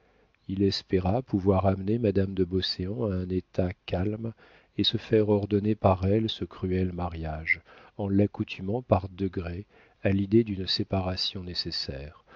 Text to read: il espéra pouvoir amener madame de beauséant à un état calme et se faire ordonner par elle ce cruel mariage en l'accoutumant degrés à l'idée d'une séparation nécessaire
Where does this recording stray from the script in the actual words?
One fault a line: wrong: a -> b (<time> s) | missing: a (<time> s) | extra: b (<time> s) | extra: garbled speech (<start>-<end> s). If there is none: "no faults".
extra: par (8.8 s)